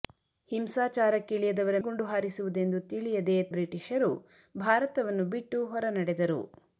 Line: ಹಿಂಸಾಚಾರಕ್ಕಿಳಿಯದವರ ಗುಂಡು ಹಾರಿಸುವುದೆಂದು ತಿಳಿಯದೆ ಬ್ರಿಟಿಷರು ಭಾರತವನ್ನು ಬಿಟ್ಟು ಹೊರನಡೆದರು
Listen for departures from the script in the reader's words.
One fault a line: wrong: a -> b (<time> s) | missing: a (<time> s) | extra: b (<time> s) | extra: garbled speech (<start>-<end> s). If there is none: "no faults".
no faults